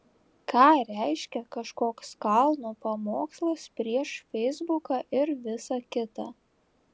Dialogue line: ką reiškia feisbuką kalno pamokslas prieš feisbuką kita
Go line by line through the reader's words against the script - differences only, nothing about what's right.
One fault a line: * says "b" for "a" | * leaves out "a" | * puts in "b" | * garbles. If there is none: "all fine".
* says "kažkoks" for "feisbuką"
* puts in "ir visa"